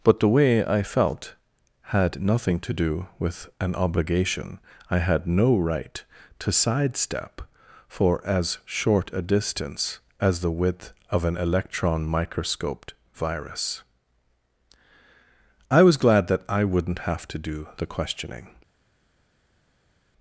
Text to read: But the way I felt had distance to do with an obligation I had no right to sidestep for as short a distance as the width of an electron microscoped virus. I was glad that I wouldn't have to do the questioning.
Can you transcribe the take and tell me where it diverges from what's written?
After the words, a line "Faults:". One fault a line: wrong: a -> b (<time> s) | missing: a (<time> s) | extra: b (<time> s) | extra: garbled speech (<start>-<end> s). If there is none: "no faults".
But the way I felt had nothing to do with an obligation I had no right to sidestep for as short a distance as the width of an electron microscoped virus. I was glad that I wouldn't have to do the questioning.
Faults:
wrong: distance -> nothing (2.2 s)